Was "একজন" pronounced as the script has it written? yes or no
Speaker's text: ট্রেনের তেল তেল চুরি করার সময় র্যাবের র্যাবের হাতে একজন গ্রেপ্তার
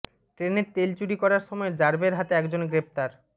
yes